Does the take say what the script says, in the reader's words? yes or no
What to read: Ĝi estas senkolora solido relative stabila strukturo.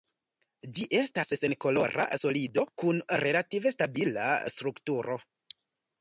no